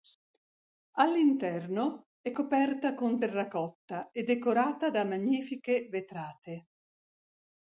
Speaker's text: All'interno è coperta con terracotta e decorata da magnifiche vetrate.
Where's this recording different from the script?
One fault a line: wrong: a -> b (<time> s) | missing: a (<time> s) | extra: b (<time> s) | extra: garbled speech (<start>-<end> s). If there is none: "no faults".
no faults